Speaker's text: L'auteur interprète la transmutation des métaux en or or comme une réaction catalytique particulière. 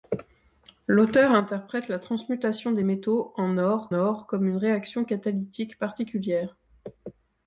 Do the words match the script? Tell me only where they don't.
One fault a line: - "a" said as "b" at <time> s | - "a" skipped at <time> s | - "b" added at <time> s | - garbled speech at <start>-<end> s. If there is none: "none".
none